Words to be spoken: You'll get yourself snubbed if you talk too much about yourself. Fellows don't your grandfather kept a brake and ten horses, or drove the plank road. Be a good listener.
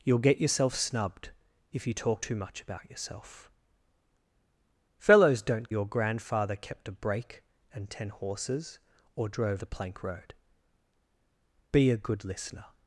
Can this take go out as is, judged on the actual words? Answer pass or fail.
pass